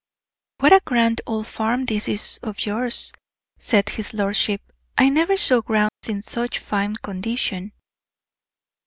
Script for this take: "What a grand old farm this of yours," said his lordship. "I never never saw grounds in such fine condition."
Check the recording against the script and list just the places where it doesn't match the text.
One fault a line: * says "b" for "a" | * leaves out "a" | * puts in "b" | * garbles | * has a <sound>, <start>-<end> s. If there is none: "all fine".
* puts in "is"
* leaves out "never"
* has a dropout, 5.9-6.0 s